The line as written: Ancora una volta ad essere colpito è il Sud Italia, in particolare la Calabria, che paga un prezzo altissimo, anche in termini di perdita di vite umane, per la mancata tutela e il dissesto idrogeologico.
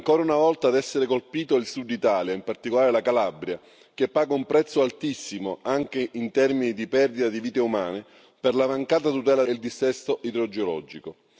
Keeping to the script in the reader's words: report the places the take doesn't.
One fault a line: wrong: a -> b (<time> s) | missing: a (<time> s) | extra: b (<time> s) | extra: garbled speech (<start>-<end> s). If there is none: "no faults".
no faults